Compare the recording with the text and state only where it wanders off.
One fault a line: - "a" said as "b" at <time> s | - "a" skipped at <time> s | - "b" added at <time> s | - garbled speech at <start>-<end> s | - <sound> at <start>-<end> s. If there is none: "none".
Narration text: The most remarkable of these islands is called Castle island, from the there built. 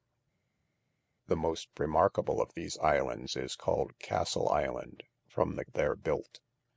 none